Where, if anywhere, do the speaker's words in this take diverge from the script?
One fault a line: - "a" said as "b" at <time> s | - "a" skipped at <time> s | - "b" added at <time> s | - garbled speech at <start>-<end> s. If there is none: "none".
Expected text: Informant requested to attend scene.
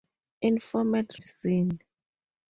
- "requested to attend" skipped at 1.2 s